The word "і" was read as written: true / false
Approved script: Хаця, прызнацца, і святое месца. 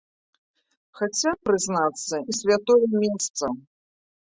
true